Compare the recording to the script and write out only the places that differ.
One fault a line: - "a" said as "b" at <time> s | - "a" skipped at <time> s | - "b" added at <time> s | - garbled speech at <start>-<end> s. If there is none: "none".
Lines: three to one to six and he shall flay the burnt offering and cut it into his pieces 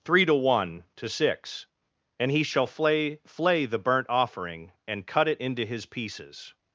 - "flay" added at 3.2 s